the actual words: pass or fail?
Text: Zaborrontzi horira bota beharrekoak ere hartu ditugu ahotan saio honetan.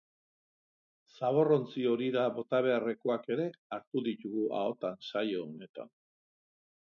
pass